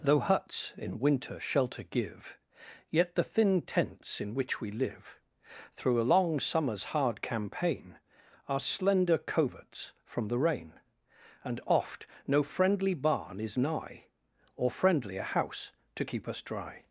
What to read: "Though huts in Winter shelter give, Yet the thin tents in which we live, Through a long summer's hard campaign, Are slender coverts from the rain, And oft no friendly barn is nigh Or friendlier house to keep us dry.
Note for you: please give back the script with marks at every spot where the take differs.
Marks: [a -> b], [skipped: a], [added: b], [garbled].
"Though huts in Winter shelter give, Yet the thin tents in which we live, Through a long summer's hard campaign, Are slender coverts from the rain, And oft no friendly barn is nigh Or friendlier house to keep us dry.